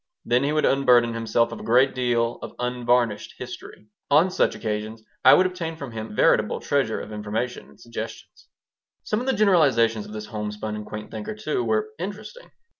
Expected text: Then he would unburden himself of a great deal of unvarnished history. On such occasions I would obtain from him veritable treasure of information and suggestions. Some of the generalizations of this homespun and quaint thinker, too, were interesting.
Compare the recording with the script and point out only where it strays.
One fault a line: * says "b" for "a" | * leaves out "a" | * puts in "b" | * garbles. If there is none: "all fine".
all fine